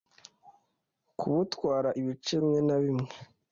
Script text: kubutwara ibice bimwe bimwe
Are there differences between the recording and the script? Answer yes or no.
yes